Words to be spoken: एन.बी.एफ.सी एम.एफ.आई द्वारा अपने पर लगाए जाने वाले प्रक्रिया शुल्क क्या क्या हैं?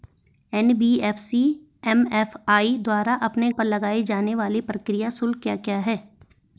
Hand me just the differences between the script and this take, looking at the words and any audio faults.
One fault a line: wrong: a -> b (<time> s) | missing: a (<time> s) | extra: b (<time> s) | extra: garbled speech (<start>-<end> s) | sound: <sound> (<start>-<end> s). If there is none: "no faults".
no faults